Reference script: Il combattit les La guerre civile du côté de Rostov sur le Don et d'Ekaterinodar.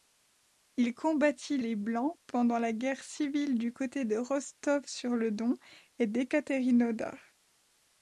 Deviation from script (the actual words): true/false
true